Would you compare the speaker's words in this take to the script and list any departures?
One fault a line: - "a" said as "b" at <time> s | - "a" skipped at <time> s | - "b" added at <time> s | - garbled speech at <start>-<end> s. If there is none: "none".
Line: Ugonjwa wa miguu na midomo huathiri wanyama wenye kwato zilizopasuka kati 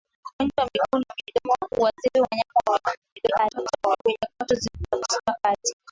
- garbled speech at 3.1-4.0 s